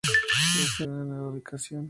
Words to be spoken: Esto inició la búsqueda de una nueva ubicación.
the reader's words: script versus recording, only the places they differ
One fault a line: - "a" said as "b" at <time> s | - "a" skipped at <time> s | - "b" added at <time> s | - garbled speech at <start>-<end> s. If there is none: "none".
- "inició la búsqueda" skipped at 0.8 s